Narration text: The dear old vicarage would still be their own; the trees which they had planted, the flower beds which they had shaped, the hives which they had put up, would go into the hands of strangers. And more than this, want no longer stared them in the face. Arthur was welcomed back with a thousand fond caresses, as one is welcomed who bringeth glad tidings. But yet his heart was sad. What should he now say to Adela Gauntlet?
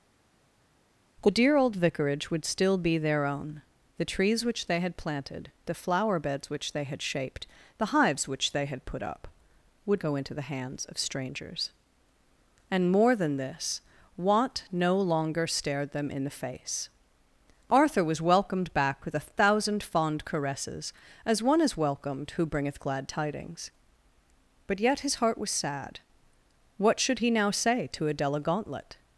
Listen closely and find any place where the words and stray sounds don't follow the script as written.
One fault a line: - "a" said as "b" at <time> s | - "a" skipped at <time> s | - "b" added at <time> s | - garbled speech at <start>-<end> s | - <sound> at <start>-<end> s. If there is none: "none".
none